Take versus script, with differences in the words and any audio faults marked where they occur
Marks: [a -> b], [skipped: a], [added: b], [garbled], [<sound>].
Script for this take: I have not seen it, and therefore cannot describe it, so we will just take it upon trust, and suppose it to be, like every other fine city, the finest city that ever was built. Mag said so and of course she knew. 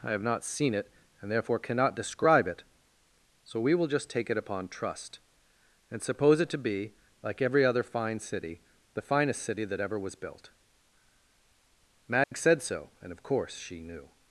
I have not seen it, and therefore cannot describe it, so we will just take it upon trust, and suppose it to be, like every other fine city, the finest city that ever was built. Mag [dropout] said so and of course she knew.